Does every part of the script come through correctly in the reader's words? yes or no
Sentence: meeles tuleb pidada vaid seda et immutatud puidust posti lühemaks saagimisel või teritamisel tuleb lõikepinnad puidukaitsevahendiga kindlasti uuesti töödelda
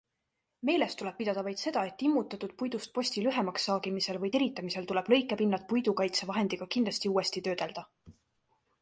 yes